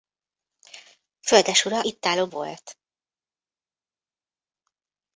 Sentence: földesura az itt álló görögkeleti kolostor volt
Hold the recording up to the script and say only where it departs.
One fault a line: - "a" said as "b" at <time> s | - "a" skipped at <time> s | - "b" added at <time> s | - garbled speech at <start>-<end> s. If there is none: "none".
- "az" skipped at 1.8 s
- "görögkeleti kolostor" skipped at 2.3 s